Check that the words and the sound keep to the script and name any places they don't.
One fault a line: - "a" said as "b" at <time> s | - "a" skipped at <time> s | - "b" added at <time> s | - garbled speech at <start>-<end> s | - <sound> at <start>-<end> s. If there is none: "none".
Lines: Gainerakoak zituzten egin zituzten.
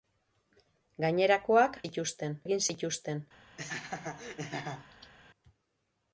- laugh at 3.6-5.1 s